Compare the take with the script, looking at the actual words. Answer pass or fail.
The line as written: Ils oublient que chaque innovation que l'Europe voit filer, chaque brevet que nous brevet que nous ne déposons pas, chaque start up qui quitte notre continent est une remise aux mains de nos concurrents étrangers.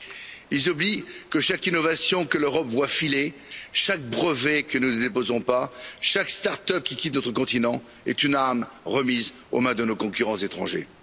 fail